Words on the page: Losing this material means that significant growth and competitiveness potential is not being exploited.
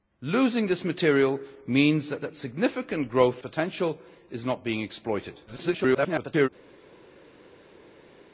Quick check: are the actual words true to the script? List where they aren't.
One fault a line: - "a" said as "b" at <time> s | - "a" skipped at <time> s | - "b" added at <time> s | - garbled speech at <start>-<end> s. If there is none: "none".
- "that" added at 2.2 s
- "and competitiveness" skipped at 3.4 s
- garbled speech at 5.5-6.5 s